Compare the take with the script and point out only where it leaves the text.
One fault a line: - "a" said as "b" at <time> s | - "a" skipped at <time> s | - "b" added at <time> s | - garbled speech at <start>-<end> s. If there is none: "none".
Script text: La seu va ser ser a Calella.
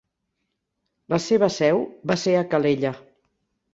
- "seva" added at 1.3 s
- "ser" skipped at 2.4 s